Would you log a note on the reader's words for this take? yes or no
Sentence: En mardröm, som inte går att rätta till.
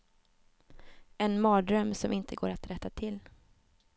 no